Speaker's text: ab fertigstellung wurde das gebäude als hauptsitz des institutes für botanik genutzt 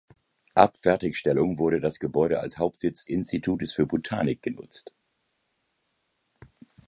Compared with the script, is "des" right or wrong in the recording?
wrong